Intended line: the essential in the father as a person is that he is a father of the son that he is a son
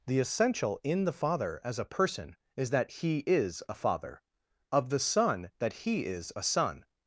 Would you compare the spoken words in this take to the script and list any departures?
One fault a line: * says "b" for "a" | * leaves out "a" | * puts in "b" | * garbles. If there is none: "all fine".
all fine